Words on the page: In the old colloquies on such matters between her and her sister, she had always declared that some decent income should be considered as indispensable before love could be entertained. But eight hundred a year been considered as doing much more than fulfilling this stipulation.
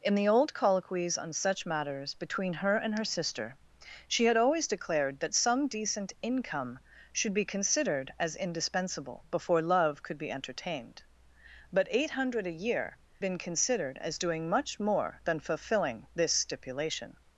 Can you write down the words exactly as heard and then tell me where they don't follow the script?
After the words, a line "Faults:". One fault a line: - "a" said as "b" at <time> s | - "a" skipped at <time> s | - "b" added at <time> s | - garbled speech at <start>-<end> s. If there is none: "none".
In the old colloquies on such matters between her and her sister, she had always declared that some decent income should be considered as indispensable before love could be entertained. But eight hundred a year been considered as doing much more than fulfilling this stipulation.
Faults:
none